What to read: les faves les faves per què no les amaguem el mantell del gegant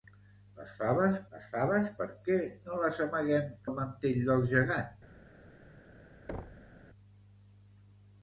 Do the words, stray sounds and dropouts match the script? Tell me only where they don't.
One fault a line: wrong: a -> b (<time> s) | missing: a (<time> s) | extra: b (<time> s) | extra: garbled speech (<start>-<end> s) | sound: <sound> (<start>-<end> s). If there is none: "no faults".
sound: thud (6.3-6.7 s)